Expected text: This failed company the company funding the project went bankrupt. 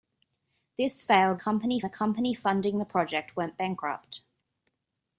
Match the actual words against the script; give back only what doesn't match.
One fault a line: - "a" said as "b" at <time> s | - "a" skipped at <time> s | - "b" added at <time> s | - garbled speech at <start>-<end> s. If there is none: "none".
none